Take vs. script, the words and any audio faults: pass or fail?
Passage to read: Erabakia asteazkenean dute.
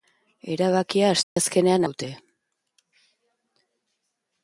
fail